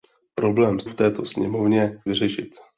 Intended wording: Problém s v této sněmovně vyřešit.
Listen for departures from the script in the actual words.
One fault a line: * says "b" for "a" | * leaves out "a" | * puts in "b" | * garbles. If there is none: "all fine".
all fine